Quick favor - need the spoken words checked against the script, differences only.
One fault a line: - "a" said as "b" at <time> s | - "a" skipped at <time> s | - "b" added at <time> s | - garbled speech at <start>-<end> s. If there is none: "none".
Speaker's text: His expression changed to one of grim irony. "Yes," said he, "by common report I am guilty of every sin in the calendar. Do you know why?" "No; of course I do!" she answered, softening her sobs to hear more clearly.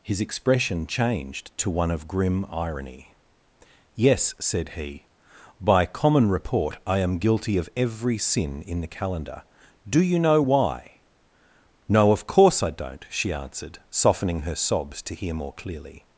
- "do" said as "don't" at 12.7 s